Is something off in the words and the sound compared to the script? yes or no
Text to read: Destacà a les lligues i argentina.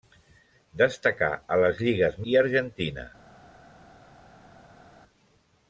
no